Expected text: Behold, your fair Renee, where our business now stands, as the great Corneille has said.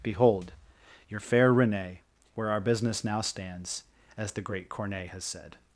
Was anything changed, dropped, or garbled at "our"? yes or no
no